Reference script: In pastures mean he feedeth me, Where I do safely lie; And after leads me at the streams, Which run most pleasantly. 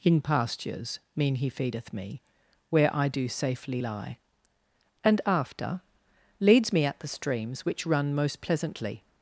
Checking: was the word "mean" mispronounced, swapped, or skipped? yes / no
no